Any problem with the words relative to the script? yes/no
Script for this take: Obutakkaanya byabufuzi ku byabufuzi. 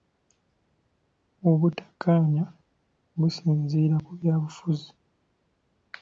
yes